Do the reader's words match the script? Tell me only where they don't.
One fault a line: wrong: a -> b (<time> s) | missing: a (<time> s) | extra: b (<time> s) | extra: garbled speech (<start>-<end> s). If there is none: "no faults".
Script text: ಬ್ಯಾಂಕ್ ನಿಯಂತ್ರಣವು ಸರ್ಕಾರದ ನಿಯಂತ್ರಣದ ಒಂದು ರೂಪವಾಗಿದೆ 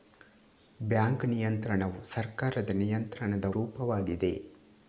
missing: ಒಂದು (3.4 s)